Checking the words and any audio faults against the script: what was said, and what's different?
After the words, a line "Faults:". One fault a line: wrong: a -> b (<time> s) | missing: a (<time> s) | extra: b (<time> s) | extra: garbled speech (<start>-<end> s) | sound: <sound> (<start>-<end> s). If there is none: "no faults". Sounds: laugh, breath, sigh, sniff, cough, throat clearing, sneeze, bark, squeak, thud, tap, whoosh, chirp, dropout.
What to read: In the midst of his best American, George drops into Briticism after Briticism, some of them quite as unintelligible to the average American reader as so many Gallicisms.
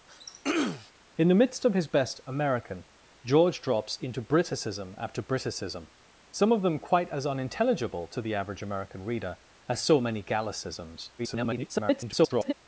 In the midst of his best American, George drops into Briticism after Briticism, some of them quite as unintelligible to the average American reader as so many Gallicisms. [garbled]
Faults:
sound: throat clearing (0.1-0.9 s)
extra: garbled speech (11.2-12.5 s)